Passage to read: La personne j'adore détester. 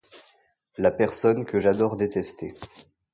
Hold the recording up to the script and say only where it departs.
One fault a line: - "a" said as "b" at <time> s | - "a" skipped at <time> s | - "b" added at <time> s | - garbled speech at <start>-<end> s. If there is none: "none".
- "que" added at 1.4 s